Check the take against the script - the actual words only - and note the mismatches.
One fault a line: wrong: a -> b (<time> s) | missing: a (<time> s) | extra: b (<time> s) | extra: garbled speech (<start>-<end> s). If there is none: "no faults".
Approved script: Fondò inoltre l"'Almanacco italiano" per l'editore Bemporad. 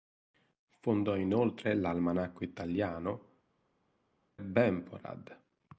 missing: per l'editore (3.3 s)